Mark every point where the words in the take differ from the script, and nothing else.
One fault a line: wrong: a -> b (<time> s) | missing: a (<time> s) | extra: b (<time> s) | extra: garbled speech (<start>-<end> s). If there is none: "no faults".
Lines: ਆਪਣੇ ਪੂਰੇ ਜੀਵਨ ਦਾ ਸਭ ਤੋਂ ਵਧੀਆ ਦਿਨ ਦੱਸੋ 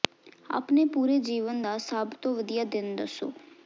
no faults